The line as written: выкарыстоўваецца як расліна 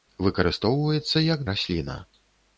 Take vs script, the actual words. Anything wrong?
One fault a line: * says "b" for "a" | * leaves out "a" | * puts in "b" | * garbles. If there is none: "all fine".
all fine